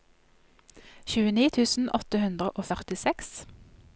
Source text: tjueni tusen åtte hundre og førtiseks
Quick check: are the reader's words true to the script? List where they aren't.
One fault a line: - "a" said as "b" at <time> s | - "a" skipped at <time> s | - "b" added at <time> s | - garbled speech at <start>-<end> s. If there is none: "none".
none